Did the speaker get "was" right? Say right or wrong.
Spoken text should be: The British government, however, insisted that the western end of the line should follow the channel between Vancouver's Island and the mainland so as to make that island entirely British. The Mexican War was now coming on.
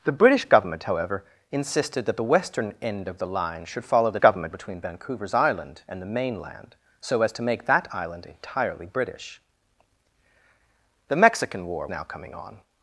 wrong